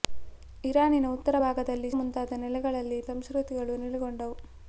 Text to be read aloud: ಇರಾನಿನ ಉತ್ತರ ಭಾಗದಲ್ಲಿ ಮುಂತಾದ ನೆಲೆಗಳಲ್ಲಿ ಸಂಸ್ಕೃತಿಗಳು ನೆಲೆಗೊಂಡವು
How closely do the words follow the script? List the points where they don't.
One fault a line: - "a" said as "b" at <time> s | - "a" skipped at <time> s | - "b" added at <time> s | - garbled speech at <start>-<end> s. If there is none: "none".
none